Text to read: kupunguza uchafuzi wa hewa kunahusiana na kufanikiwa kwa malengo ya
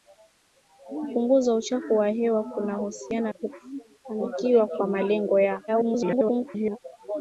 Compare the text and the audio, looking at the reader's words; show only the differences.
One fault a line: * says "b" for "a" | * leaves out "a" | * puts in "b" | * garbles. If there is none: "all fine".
* leaves out "na"
* garbles